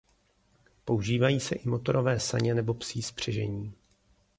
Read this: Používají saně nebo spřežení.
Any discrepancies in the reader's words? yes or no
yes